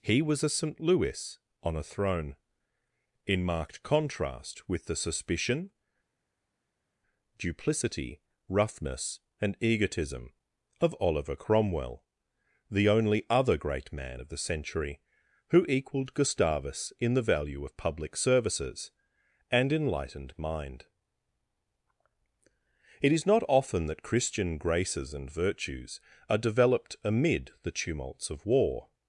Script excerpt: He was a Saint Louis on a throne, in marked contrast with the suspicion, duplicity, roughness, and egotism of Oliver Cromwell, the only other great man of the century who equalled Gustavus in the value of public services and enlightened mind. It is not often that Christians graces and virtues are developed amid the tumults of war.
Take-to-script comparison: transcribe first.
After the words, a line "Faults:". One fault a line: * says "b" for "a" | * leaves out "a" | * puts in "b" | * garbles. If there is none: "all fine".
He was a Saint Louis on a throne, in marked contrast with the suspicion, duplicity, roughness, and egotism of Oliver Cromwell, the only other great man of the century who equalled Gustavus in the value of public services and enlightened mind. It is not often that Christian graces and virtues are developed amid the tumults of war.
Faults:
* says "Christian" for "Christians"